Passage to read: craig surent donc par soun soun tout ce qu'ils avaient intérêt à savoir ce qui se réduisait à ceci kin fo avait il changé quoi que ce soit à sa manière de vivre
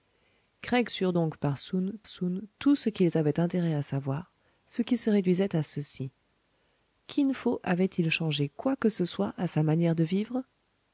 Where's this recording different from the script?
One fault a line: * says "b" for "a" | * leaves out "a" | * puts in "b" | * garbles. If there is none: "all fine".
all fine